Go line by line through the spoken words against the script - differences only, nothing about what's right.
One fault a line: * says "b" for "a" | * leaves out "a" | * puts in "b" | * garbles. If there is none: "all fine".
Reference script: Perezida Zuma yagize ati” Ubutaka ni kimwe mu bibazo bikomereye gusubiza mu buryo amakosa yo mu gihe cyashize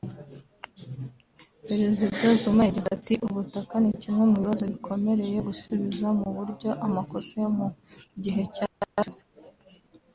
all fine